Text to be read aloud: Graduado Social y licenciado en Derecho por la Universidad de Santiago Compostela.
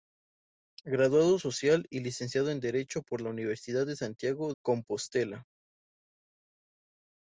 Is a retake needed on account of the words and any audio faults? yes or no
no